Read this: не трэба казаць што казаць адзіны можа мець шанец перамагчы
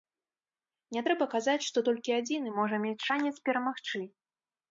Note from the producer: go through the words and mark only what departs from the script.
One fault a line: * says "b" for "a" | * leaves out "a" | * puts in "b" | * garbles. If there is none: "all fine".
* says "толькі" for "казаць"